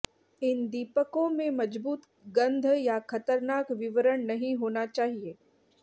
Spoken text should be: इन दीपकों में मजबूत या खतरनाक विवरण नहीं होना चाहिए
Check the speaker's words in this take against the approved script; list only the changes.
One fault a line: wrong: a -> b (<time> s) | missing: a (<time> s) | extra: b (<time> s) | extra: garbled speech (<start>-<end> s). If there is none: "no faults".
extra: गंध (2.4 s)